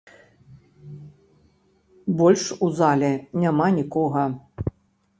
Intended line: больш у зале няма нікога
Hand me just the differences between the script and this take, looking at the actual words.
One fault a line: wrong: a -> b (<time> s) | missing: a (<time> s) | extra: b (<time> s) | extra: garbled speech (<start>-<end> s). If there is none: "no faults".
no faults